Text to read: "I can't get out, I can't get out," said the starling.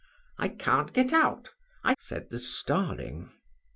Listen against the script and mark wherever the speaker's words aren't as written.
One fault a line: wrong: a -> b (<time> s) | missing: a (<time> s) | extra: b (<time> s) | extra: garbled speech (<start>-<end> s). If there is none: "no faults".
missing: can't get out (1.9 s)